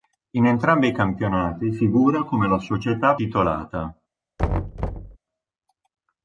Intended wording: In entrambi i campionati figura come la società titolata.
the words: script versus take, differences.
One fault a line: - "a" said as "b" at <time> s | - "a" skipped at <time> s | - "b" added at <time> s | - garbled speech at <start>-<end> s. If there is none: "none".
none